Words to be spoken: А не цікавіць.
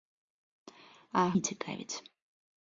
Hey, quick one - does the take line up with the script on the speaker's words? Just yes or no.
yes